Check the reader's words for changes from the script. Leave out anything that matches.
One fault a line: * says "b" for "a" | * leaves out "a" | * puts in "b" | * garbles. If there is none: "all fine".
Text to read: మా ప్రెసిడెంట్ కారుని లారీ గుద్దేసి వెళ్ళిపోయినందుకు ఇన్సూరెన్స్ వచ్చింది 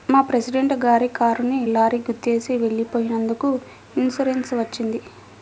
* puts in "గారి"